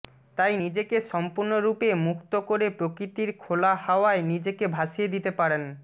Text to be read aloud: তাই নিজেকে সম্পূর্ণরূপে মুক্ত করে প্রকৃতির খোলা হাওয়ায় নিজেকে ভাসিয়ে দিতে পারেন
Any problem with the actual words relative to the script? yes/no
no